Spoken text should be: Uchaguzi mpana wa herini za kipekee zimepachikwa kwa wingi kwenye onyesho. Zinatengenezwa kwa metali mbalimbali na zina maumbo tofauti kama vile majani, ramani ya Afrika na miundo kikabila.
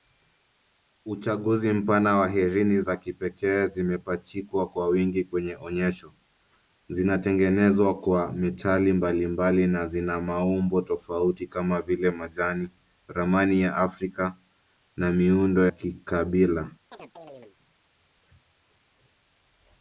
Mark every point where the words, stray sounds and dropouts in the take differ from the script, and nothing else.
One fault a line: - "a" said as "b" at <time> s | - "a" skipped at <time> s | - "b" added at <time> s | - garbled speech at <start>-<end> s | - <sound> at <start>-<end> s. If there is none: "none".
- chirp at 16.9-17.6 s